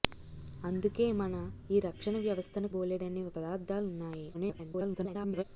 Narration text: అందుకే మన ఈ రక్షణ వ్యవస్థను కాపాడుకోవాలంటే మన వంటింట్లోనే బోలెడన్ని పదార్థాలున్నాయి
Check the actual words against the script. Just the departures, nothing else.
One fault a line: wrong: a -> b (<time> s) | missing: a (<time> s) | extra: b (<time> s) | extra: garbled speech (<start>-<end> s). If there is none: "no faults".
missing: కాపాడుకోవాలంటే మన వంటింట్లోనే (2.7 s)
extra: garbled speech (4.3-5.4 s)